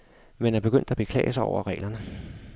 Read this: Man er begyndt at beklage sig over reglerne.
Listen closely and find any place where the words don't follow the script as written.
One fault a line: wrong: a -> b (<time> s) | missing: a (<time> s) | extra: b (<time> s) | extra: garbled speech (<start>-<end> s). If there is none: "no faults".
no faults